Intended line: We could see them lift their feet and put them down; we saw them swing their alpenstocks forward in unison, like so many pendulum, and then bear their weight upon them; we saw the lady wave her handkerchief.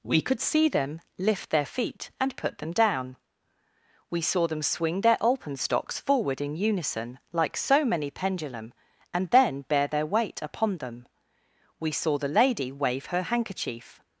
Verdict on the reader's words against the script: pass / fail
pass